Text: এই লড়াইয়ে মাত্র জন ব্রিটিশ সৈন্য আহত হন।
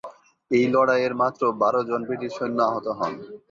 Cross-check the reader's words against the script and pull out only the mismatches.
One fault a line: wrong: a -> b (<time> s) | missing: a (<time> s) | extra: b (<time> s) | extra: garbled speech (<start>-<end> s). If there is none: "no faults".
extra: বারো (1.6 s)